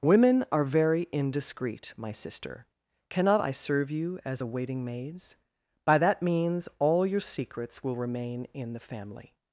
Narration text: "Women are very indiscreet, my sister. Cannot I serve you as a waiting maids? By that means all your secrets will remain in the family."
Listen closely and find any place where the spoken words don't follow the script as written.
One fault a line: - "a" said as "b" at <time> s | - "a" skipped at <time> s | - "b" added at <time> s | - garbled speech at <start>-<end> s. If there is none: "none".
none